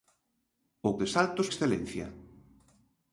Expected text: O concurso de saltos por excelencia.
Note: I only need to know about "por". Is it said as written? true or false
false